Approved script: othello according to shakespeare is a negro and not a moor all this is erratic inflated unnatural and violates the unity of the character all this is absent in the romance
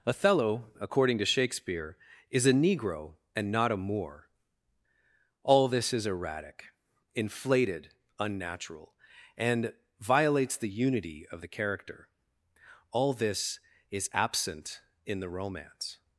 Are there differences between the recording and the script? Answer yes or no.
no